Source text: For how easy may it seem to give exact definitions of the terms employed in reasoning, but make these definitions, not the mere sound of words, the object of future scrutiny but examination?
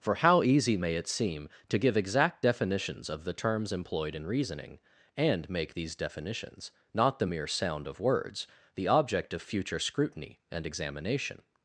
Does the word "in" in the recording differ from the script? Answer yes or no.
no